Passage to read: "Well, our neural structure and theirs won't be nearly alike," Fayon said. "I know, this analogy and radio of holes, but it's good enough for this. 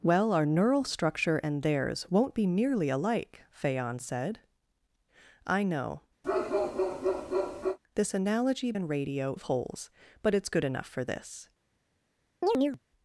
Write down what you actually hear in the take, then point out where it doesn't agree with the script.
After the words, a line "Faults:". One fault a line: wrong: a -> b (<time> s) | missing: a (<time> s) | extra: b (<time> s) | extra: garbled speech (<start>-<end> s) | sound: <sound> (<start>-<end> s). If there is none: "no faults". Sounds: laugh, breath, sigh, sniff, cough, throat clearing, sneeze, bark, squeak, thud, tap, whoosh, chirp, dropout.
"Well, our neural structure and theirs won't be nearly alike," Fayon said. "I know, this analogy and radio of holes, but it's good enough for this.
Faults:
sound: bark (6.2-7.8 s)
sound: chirp (12.4-12.8 s)